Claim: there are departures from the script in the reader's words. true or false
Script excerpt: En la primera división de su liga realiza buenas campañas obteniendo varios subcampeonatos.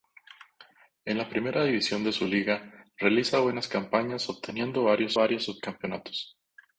true